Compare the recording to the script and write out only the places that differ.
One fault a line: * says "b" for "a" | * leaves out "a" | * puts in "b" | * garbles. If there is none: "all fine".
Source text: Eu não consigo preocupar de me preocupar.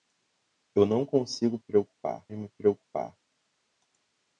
all fine